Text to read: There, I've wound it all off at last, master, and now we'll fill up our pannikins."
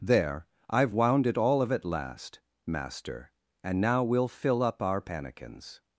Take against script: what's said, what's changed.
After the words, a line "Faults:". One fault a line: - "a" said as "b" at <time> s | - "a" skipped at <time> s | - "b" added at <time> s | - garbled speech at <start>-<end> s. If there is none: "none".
There, I've wound it all of at last, master, and now we'll fill up our pannikins."
Faults:
- "off" said as "of" at 1.6 s